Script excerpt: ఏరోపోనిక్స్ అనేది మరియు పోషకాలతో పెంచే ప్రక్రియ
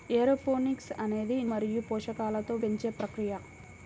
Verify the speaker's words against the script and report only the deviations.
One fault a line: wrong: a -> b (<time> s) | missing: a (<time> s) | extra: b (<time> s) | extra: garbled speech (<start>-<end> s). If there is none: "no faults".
no faults